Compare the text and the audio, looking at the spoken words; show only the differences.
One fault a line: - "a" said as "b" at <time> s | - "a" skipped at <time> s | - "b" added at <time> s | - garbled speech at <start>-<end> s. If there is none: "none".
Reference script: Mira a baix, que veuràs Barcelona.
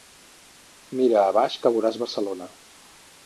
none